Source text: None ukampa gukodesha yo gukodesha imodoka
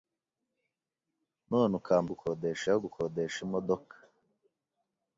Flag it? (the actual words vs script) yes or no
no